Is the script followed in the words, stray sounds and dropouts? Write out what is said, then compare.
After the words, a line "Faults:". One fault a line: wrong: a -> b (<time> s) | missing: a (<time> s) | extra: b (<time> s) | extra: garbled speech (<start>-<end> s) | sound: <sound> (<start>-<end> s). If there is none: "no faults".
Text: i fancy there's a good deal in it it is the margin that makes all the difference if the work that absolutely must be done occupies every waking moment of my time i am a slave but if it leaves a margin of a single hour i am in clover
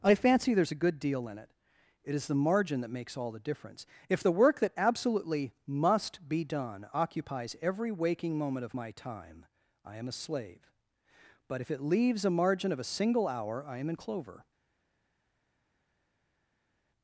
i fancy there's a good deal in it it is the margin that makes all the difference if the work that absolutely must be done occupies every waking moment of my time i am a slave but if it leaves a margin of a single hour i am in clover
Faults:
no faults